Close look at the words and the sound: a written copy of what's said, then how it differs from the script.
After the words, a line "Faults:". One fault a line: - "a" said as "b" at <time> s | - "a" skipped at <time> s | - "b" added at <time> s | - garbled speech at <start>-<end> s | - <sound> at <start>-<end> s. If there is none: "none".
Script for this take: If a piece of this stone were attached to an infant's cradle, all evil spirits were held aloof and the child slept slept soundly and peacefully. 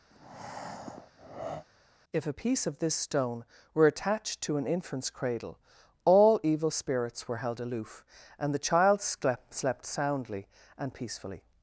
If a piece of this stone were attached to an infant's cradle, all evil spirits were held aloof and the child slept slept soundly and peacefully.
Faults:
- breath at 0.1-1.7 s